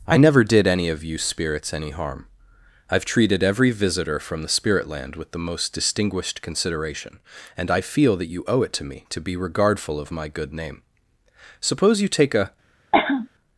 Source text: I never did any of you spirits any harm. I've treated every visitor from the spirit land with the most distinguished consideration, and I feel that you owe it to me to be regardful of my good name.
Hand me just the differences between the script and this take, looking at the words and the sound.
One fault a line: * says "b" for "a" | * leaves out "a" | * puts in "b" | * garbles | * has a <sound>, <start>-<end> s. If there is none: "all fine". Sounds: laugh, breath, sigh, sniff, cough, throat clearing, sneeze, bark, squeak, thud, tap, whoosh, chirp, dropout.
* puts in "Suppose you take a"
* has a cough, 12.9-13.3 s